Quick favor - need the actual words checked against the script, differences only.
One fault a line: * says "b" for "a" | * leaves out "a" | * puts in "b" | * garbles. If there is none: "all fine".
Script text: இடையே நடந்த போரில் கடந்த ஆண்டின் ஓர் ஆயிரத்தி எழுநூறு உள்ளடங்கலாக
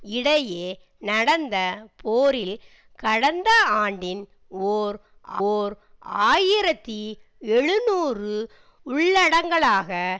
* puts in "ஓர்"